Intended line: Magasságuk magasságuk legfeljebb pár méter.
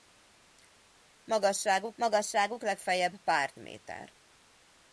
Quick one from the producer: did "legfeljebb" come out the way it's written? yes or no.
yes